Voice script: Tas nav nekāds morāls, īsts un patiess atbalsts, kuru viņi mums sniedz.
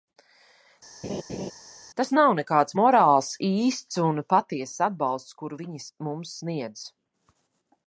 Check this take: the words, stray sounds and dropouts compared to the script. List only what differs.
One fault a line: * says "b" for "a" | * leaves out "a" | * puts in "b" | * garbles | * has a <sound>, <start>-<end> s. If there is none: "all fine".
* has a laugh, 1.0-1.5 s